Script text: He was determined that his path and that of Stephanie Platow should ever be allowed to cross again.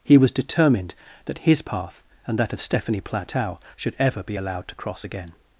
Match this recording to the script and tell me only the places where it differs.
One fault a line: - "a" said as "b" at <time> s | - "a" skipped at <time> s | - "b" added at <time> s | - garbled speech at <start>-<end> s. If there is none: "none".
none